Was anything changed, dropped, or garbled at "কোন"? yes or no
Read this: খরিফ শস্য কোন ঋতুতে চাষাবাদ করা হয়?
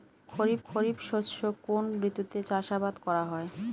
no